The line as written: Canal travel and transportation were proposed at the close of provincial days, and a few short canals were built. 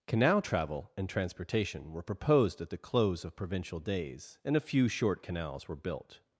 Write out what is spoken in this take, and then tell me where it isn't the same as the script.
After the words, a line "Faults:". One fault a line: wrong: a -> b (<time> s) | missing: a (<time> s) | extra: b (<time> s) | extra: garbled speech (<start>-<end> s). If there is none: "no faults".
Canal travel and transportation were proposed at the close of provincial days, and a few short canals were built.
Faults:
no faults